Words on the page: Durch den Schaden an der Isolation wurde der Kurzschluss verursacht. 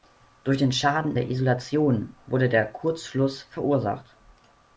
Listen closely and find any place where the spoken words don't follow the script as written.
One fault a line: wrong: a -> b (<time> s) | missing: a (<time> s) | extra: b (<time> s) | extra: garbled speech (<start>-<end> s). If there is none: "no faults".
missing: an (1.1 s)